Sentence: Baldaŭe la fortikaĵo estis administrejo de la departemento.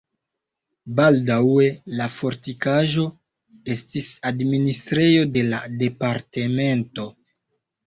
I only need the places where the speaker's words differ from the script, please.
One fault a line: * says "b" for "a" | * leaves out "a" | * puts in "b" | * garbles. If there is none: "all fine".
all fine